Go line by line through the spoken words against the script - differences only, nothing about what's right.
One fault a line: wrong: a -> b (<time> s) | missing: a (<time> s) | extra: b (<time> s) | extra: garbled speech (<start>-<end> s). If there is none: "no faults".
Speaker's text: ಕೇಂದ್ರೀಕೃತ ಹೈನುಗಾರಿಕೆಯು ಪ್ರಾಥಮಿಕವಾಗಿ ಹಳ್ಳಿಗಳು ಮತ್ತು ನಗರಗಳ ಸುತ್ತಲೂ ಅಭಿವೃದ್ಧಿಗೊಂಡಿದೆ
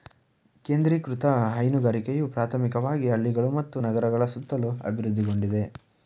no faults